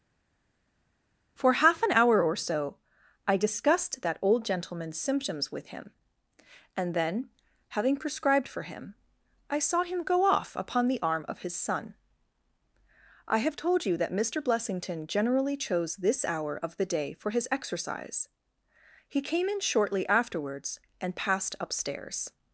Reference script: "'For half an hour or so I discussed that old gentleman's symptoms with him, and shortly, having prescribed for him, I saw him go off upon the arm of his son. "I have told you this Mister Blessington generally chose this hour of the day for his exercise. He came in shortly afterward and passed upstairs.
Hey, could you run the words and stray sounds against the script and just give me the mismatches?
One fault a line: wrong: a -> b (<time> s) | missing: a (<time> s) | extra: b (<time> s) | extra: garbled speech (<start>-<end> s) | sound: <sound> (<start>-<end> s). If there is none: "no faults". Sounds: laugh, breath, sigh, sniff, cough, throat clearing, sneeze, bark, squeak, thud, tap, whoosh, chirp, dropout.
wrong: shortly -> then (6.9 s)
wrong: this -> that (14.0 s)
wrong: afterward -> afterwards (20.1 s)